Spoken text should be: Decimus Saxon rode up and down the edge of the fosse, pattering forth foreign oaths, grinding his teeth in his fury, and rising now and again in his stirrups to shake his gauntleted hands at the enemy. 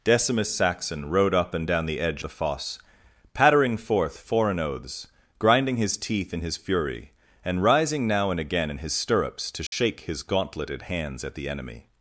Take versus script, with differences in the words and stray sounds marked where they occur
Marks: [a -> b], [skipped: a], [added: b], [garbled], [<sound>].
Decimus Saxon rode up and down the edge [skipped: of] the fosse, pattering forth foreign oaths, grinding his teeth in his fury, and rising now and again in his stirrups to shake [dropout] his gauntleted hands at the enemy.